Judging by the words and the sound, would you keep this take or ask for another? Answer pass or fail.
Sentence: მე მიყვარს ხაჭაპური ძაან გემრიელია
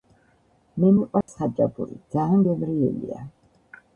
fail